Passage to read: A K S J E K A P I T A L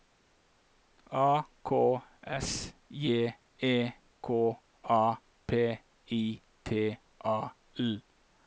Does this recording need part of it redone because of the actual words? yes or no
no